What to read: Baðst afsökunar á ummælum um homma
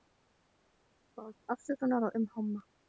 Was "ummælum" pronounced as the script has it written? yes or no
no